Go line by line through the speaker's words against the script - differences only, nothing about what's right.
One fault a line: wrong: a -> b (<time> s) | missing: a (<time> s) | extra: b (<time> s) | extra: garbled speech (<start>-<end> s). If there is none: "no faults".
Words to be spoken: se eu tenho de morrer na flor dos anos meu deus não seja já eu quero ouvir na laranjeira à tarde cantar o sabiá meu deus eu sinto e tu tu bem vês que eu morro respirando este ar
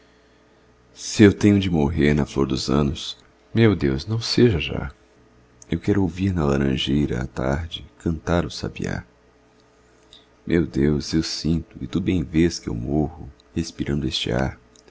missing: tu (12.0 s)